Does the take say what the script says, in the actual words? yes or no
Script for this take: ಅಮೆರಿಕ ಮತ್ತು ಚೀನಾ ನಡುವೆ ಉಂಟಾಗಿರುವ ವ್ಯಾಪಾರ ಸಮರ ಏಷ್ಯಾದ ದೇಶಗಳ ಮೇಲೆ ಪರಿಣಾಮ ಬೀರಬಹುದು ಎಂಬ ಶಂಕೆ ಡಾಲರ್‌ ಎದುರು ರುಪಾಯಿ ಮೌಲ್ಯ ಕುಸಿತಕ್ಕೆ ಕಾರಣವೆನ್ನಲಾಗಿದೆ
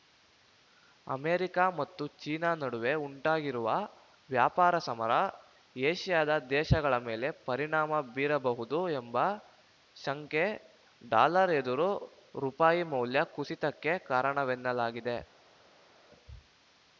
yes